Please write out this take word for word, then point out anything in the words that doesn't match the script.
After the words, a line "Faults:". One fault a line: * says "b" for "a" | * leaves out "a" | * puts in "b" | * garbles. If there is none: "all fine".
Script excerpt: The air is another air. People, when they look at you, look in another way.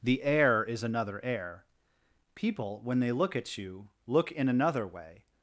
The air is another air. People, when they look at you, look in another way.
Faults:
all fine